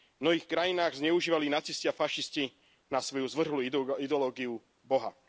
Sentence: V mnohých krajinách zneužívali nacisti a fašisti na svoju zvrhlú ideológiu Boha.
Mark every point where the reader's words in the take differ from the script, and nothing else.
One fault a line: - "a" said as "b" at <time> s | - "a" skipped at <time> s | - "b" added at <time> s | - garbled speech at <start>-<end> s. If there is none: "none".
none